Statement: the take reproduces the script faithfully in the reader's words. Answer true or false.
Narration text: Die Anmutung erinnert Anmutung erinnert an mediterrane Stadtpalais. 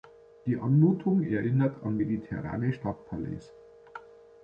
false